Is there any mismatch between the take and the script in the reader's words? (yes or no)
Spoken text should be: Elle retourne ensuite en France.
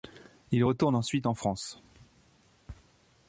yes